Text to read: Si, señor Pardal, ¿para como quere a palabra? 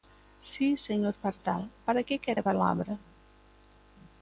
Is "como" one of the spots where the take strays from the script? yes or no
yes